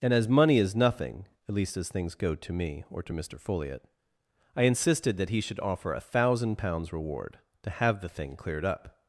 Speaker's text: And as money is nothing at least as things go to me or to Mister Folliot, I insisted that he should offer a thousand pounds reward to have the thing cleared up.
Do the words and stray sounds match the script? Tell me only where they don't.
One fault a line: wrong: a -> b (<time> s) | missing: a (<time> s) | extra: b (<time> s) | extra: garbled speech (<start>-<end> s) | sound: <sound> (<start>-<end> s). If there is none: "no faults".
no faults